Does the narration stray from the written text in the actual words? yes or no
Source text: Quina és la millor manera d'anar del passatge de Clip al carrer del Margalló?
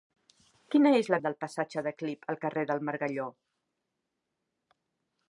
yes